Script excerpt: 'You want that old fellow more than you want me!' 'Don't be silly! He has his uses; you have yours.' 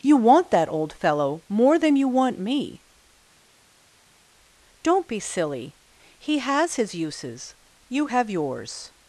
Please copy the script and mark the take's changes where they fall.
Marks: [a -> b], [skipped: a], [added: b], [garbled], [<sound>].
'You want that old fellow more than you want me!' 'Don't be silly! He has his uses; you have yours.'